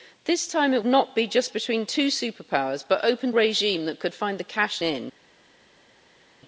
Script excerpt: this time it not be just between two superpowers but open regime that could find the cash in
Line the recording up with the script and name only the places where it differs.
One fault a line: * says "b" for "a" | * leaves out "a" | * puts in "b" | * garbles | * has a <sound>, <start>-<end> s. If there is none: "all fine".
all fine